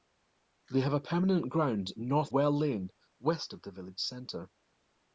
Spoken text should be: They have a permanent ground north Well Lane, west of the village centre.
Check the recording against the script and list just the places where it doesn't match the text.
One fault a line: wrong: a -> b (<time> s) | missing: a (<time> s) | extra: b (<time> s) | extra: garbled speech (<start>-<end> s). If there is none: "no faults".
no faults